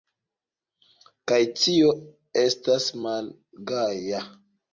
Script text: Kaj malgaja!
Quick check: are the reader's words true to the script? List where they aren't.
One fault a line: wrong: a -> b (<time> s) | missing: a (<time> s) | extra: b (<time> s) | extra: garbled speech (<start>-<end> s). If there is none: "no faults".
extra: tio estas (1.6 s)